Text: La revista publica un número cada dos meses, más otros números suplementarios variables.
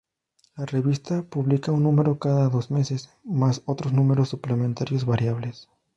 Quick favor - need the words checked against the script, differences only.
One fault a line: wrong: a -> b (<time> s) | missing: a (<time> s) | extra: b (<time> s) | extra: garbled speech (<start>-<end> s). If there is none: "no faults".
no faults